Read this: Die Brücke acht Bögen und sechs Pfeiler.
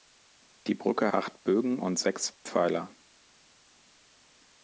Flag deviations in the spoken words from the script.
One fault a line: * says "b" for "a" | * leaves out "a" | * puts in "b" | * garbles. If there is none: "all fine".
all fine